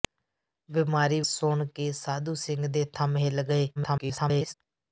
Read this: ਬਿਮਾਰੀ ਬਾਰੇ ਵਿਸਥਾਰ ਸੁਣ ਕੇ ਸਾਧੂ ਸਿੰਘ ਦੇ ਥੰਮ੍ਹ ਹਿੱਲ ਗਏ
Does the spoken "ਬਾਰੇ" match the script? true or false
false